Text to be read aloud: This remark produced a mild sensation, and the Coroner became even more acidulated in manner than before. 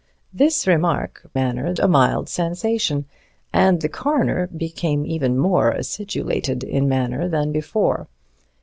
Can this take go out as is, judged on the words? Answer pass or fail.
fail